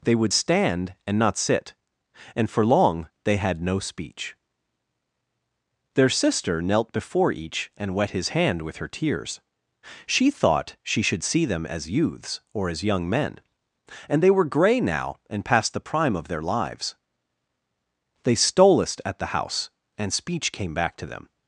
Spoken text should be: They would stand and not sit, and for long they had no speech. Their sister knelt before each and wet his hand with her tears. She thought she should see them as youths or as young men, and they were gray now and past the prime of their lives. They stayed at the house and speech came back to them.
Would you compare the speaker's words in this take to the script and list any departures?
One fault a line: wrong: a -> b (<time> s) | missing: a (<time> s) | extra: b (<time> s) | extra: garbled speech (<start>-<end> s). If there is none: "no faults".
wrong: stayed -> stolest (18.3 s)